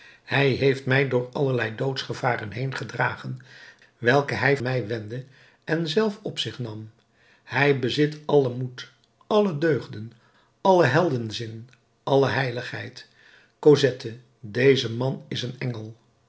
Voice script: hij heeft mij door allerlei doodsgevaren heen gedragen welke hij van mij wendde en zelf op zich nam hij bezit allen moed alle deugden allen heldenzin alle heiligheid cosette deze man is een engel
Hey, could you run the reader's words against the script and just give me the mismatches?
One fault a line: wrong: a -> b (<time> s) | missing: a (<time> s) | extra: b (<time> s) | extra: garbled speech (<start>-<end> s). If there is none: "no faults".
missing: van (4.6 s)